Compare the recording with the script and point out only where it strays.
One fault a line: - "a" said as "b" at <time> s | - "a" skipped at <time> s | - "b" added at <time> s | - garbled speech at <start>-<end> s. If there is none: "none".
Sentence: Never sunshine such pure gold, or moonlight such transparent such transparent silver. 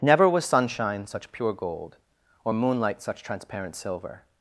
- "was" added at 0.3 s
- "such transparent" skipped at 3.7 s